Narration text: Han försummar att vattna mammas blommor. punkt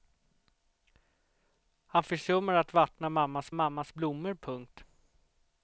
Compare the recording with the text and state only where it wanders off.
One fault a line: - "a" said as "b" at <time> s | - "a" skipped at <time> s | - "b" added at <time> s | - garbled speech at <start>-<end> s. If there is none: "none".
- "mammas" added at 3.5 s